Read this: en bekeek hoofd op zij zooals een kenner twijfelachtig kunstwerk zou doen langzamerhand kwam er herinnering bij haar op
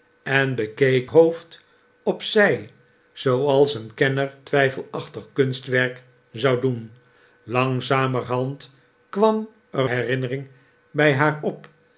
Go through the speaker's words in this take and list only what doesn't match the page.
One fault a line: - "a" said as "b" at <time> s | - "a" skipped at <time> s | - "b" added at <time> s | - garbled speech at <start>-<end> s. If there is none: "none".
none